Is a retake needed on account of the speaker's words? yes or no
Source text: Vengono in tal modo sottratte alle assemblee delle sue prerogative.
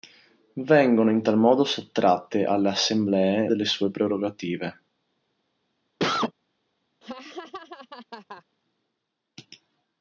no